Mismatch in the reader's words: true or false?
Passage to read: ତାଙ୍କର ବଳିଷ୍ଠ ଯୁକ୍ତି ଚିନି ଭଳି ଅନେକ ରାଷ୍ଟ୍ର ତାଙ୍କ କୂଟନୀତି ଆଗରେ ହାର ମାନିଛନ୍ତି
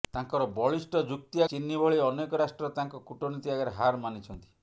false